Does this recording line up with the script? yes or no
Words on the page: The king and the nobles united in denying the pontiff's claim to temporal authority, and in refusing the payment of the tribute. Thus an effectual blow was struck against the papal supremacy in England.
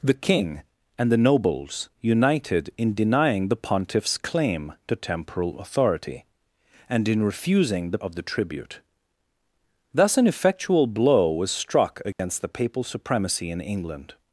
no